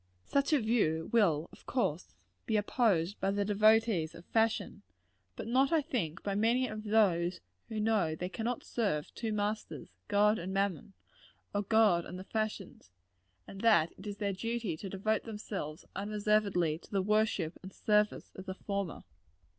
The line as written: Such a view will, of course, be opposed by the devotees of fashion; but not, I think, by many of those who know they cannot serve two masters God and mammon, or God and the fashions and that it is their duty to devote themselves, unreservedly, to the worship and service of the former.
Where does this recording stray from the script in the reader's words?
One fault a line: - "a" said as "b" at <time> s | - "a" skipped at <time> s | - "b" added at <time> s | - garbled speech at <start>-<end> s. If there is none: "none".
none